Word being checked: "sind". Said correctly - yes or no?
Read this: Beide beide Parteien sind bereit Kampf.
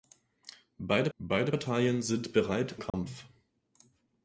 yes